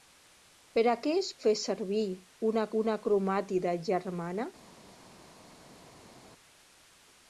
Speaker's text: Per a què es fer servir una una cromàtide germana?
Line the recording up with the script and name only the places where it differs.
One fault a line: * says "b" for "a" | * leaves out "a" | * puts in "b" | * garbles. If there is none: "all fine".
all fine